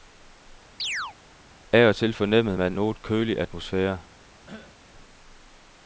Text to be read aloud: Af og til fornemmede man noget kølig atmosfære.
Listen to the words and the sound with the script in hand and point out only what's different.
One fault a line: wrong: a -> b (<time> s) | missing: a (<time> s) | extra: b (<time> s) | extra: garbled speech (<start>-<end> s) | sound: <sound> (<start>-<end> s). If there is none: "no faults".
sound: chirp (0.8-1.2 s)
sound: cough (4.5-4.8 s)